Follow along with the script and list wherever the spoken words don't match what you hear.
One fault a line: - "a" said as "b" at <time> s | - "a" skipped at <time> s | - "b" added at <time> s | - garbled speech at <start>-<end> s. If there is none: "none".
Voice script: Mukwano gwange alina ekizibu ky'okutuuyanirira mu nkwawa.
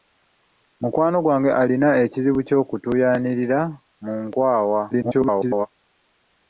- garbled speech at 4.9-5.7 s